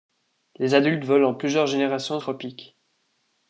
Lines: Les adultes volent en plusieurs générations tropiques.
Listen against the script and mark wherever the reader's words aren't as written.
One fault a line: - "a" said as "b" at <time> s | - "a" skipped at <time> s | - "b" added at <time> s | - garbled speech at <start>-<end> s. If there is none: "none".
none